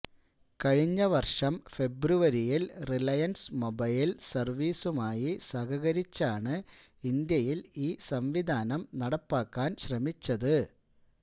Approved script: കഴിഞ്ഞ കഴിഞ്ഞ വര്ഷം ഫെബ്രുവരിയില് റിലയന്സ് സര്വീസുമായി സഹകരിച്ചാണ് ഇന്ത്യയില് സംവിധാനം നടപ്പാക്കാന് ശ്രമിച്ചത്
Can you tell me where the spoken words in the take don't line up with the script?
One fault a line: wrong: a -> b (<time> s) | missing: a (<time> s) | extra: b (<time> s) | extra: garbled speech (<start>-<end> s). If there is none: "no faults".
missing: കഴിഞ്ഞ (1.0 s)
extra: മൊബൈല് (3.5 s)
extra: ഈ (7.8 s)